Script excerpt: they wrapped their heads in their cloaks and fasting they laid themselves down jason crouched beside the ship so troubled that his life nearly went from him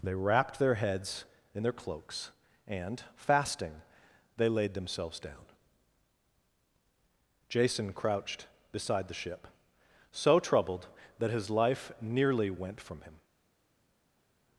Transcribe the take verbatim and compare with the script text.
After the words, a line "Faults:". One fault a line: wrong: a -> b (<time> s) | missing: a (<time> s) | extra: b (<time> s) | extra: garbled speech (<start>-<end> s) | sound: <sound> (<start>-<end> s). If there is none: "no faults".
they wrapped their heads in their cloaks and fasting they laid themselves down jason crouched beside the ship so troubled that his life nearly went from him
Faults:
no faults